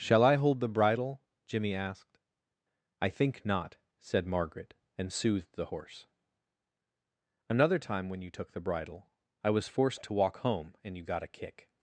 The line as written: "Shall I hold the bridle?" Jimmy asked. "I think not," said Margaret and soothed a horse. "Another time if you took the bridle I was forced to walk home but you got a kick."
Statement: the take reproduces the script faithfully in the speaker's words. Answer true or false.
false